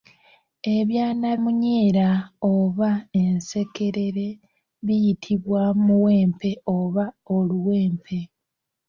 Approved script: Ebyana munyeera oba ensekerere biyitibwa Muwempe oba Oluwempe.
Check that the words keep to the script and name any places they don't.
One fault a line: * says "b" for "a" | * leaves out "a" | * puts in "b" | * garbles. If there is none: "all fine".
all fine